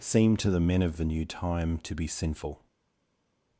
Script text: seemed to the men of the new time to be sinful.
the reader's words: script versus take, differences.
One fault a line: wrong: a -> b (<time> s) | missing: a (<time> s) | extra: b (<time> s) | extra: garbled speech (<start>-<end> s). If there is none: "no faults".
no faults